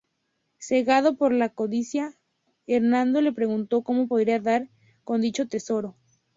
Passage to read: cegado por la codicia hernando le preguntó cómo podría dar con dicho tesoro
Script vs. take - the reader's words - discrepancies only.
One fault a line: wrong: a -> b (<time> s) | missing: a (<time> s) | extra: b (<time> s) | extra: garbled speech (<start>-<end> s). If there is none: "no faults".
no faults